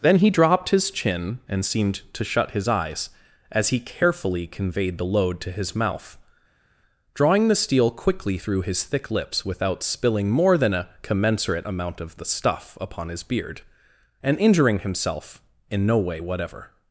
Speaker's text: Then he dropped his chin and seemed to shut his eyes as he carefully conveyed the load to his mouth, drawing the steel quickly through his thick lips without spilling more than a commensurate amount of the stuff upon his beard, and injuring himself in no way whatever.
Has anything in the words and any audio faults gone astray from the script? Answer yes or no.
no